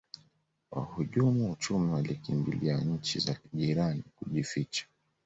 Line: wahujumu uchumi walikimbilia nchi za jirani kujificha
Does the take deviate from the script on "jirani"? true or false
false